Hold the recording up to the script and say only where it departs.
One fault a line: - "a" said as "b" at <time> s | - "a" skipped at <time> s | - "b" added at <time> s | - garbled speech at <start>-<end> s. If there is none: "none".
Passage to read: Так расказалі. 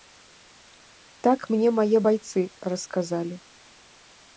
- "мне мае байцы" added at 1.6 s